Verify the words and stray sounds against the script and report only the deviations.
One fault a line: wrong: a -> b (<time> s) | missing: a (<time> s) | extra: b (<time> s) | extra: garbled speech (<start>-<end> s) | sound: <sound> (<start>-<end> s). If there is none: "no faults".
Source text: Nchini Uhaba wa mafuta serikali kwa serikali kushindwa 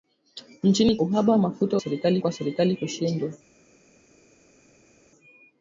no faults